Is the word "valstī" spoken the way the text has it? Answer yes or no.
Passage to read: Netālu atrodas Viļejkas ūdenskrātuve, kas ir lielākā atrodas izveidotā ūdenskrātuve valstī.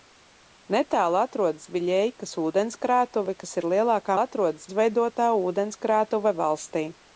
yes